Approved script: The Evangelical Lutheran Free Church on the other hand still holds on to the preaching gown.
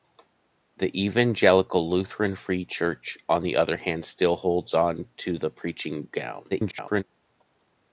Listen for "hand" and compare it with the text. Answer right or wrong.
right